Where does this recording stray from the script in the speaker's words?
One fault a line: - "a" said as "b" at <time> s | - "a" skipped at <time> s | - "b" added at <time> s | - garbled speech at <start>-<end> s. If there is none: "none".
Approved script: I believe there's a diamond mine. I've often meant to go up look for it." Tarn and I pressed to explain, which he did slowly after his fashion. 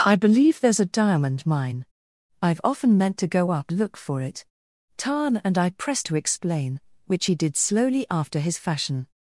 none